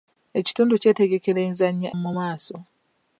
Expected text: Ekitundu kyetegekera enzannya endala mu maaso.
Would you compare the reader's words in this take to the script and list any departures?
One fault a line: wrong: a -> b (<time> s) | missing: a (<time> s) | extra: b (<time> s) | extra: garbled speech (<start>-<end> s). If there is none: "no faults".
missing: endala (1.9 s)